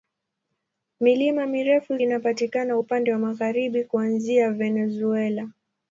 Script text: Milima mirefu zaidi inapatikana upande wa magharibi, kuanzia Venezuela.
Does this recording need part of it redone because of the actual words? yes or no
yes